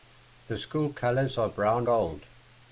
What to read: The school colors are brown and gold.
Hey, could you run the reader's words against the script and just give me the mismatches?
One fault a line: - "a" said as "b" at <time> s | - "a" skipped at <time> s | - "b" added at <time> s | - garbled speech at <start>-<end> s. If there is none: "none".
- "and" skipped at 1.9 s